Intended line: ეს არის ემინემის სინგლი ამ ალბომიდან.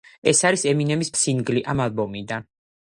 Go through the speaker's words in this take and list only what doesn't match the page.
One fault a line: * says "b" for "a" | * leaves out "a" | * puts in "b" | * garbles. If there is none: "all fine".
all fine